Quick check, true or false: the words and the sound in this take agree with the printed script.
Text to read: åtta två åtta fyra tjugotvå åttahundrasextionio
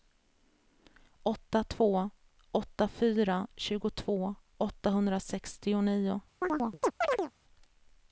false